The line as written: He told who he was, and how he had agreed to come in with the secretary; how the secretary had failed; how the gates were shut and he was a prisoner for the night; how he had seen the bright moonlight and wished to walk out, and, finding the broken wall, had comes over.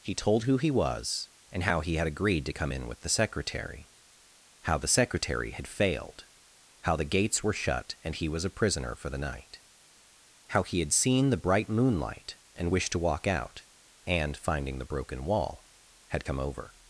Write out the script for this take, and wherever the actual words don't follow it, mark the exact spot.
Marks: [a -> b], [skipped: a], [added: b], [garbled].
He told who he was, and how he had agreed to come in with the secretary; how the secretary had failed; how the gates were shut and he was a prisoner for the night; how he had seen the bright moonlight and wished to walk out, and, finding the broken wall, had [comes -> come] over.